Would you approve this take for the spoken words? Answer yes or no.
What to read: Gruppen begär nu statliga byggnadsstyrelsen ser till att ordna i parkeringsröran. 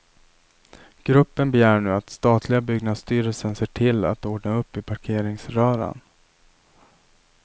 no